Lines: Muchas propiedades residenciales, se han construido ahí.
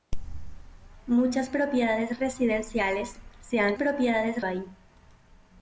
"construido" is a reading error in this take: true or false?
true